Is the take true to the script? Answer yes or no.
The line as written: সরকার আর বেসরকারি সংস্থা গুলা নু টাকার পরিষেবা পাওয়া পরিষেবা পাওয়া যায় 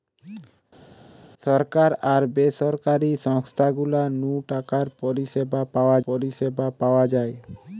yes